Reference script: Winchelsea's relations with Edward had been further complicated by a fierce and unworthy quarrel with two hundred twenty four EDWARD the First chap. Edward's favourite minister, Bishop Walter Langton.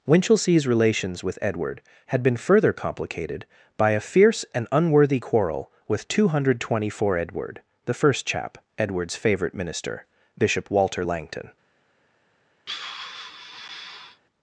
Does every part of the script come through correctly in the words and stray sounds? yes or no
no